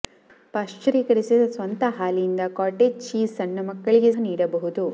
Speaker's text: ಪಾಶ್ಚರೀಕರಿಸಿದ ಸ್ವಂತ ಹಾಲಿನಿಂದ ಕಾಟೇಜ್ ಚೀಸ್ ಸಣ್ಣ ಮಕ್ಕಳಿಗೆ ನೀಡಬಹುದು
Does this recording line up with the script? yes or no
yes